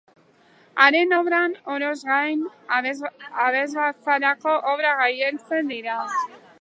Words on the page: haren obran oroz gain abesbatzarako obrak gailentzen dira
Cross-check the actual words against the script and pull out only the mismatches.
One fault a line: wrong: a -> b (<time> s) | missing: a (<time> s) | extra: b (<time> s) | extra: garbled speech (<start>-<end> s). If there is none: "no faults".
no faults